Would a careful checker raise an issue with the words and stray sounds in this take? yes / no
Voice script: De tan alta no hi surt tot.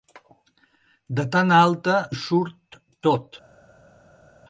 yes